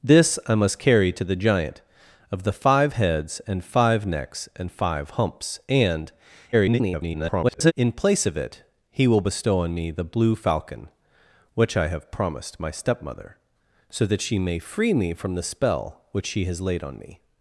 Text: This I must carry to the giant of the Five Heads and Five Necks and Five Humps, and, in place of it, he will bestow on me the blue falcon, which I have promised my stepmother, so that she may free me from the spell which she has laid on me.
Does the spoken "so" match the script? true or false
true